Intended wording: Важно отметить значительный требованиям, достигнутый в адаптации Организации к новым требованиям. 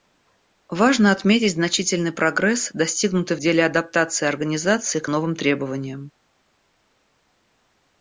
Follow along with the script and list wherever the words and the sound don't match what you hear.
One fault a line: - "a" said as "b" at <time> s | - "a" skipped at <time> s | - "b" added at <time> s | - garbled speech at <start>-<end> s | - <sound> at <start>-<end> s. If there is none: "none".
- "требованиям" said as "прогресс" at 2.1 s
- "деле" added at 3.4 s